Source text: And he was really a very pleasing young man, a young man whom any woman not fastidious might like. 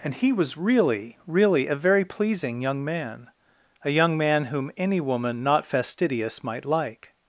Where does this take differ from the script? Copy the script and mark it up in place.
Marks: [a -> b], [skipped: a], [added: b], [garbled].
And he was really [added: really] a very pleasing young man, a young man whom any woman not fastidious might like.